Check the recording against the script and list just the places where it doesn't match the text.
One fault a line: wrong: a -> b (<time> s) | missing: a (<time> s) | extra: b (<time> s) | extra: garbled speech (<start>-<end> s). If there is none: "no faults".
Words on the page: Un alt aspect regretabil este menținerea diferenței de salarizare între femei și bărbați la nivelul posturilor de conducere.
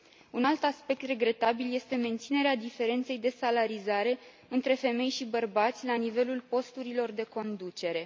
no faults